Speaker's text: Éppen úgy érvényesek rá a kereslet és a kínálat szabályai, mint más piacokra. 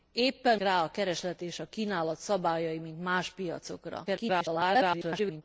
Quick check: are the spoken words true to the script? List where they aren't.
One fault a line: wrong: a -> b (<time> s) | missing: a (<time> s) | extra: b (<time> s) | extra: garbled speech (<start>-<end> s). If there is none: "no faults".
missing: úgy érvényesek (0.6 s)
extra: garbled speech (4.1-5.4 s)